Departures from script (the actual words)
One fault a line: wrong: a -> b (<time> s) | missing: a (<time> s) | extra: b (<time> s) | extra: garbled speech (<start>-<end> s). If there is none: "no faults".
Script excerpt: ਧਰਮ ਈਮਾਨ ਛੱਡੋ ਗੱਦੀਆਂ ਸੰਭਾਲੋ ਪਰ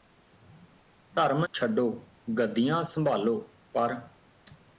missing: ਈਮਾਨ (1.4 s)